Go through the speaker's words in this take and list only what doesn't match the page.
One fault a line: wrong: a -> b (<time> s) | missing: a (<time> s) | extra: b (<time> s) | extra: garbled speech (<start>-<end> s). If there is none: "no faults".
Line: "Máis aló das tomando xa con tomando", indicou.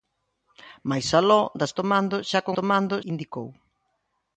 no faults